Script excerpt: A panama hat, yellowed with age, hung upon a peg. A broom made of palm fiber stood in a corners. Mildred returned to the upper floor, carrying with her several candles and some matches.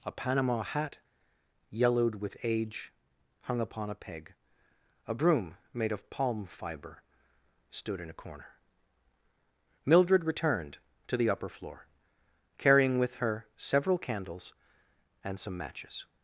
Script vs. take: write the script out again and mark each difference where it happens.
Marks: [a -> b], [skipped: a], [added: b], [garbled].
A panama hat, yellowed with age, hung upon a peg. A broom made of palm fiber stood in a [corners. -> corner] Mildred returned to the upper floor, carrying with her several candles and some matches.